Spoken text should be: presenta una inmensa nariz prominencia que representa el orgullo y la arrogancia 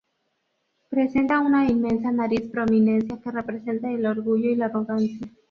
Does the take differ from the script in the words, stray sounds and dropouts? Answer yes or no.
no